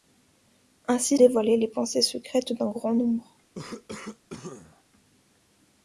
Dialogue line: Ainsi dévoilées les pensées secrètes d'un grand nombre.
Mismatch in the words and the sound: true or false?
true